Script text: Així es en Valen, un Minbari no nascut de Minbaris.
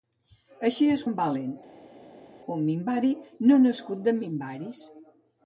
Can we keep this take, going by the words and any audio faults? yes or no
yes